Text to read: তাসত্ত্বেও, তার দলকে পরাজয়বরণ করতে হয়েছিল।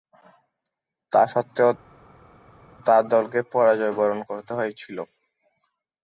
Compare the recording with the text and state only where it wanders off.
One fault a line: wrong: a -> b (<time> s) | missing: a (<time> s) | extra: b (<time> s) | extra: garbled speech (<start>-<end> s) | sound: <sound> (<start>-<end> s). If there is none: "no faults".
no faults